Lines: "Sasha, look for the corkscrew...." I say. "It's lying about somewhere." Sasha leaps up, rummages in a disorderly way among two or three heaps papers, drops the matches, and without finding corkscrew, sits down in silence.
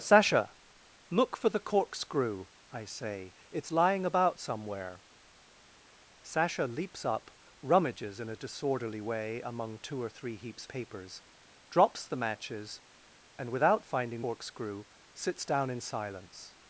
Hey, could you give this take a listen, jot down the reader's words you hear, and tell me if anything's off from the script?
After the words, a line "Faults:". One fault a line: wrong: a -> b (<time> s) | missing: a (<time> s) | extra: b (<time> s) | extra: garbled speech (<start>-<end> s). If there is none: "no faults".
"Sasha, look for the corkscrew...." I say. "It's lying about somewhere." Sasha leaps up, rummages in a disorderly way among two or three heaps papers, drops the matches, and without finding corkscrew, sits down in silence.
Faults:
no faults